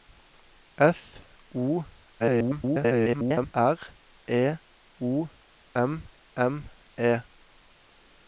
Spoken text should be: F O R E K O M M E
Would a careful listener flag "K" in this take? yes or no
yes